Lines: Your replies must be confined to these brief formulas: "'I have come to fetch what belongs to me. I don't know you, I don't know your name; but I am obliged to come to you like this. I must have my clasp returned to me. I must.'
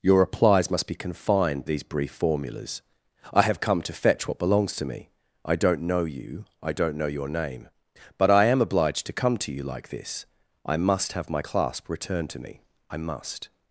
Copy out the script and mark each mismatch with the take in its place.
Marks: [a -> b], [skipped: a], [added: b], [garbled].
Your replies must be confined [skipped: to] these brief formulas: "'I have come to fetch what belongs to me. I don't know you, I don't know your name; but I am obliged to come to you like this. I must have my clasp returned to me. I must.'